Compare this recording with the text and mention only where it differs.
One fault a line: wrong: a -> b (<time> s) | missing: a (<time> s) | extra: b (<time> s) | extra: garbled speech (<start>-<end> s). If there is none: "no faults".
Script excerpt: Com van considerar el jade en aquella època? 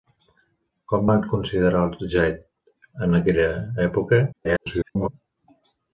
extra: garbled speech (4.3-5.1 s)